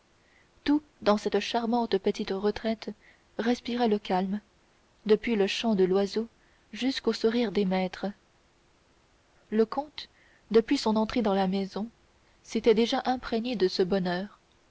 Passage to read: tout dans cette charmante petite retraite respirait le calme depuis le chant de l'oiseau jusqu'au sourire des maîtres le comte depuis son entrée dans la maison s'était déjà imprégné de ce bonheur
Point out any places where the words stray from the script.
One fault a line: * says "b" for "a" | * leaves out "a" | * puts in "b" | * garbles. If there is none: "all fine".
all fine